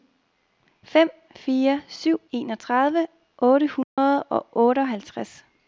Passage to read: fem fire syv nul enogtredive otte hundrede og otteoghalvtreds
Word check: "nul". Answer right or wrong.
wrong